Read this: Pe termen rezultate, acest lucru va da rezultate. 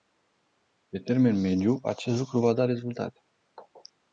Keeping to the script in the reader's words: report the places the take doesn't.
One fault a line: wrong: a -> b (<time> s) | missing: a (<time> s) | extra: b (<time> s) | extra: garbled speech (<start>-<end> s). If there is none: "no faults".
wrong: rezultate -> mediu (1.4 s)